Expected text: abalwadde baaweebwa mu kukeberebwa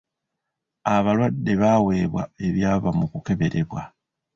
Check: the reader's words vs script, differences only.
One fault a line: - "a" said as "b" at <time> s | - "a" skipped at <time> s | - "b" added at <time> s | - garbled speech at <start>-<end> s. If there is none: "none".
- "ebyava" added at 2.5 s